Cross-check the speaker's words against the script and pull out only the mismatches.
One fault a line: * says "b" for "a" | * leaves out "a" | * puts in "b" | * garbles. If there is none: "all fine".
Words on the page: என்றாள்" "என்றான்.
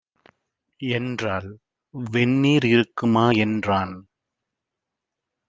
* puts in "வெந்நீர் இருக்குமா"